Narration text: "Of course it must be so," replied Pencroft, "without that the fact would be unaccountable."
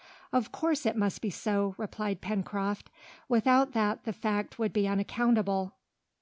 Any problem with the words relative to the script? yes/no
no